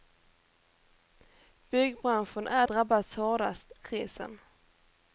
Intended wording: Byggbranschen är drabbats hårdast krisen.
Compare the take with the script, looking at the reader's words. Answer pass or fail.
pass